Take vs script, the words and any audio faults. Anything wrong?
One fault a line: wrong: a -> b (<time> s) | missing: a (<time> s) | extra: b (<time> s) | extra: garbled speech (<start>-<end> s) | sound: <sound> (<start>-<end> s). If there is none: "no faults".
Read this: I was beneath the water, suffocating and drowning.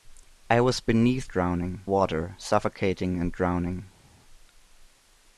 wrong: the -> drowning (1.3 s)